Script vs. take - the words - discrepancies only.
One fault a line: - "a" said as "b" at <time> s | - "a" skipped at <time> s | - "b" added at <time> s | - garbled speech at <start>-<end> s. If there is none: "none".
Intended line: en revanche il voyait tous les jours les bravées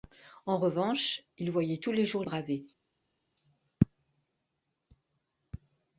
- "les" skipped at 2.2 s